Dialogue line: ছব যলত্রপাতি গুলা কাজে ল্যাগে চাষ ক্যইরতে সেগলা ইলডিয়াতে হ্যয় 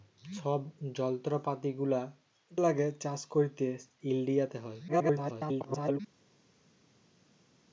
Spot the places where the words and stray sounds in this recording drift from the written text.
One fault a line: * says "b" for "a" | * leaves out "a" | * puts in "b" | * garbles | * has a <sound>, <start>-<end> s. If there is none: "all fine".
* leaves out "কাজে"
* leaves out "সেগলা"
* garbles